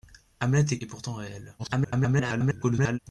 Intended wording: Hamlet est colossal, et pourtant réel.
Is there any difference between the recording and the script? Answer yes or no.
yes